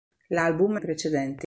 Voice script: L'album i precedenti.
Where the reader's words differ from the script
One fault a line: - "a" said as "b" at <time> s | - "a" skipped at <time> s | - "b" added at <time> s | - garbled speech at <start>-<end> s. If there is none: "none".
none